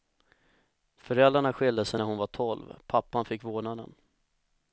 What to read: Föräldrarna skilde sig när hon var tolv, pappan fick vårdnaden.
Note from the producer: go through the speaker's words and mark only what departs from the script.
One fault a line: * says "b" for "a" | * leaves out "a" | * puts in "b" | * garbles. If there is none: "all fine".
all fine